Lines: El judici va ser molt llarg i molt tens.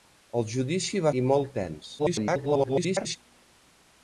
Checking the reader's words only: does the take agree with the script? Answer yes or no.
no